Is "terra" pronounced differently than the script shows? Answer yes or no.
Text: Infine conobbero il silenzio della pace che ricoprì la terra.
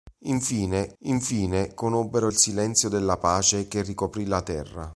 no